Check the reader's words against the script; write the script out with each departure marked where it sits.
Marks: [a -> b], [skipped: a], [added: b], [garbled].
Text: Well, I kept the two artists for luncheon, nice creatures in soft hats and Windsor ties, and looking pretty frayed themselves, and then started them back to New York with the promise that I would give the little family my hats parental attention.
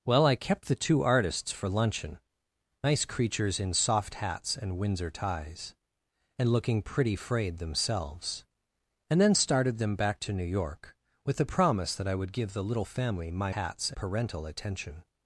Well, I kept the two artists for luncheon, nice creatures in soft hats and Windsor ties, and looking pretty frayed themselves, and then started them back to New York with the promise that I would give the little family my hats parental attention.